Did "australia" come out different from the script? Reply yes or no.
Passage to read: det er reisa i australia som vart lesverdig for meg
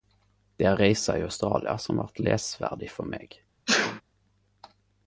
no